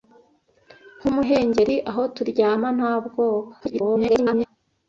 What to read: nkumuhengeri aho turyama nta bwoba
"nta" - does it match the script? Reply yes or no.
yes